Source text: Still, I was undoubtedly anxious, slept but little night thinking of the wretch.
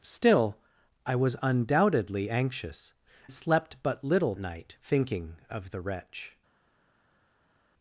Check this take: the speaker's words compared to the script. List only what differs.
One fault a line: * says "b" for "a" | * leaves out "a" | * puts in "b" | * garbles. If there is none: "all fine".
all fine